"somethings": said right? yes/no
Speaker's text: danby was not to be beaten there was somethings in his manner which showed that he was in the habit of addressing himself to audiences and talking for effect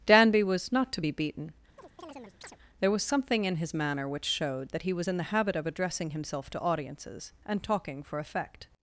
no